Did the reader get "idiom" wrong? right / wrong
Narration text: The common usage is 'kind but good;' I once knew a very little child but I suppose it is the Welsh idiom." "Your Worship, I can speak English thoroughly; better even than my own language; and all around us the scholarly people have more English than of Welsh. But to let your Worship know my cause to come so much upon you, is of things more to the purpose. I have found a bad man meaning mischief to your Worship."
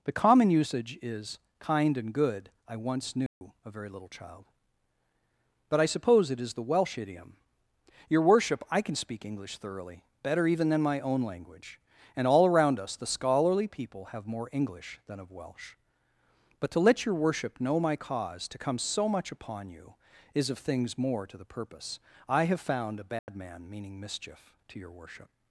right